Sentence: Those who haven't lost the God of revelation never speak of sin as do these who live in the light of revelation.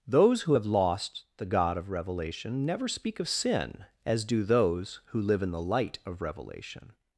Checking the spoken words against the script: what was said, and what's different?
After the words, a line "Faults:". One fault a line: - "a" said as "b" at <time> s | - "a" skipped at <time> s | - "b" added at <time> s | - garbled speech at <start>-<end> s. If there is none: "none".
Those who have lost the God of revelation never speak of sin as do those who live in the light of revelation.
Faults:
- "haven't" said as "have" at 0.5 s
- "these" said as "those" at 4.4 s